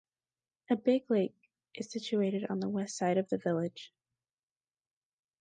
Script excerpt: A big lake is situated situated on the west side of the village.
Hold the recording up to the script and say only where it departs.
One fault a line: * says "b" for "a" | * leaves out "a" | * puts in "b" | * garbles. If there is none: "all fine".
* leaves out "situated"